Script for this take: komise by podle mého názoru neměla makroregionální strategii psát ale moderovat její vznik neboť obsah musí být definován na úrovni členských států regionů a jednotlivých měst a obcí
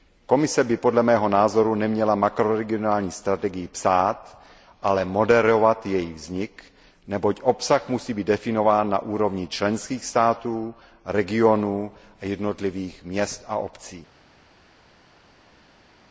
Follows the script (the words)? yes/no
yes